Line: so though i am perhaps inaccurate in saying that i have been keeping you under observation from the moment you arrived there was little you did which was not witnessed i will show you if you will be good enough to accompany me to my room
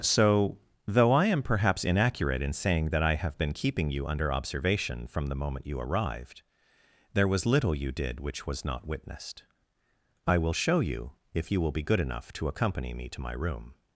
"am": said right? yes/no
yes